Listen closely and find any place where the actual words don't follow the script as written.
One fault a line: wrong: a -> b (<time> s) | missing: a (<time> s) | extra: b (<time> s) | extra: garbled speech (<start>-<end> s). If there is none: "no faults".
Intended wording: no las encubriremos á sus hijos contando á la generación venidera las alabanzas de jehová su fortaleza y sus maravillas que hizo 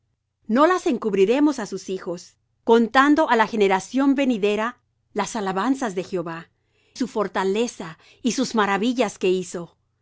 no faults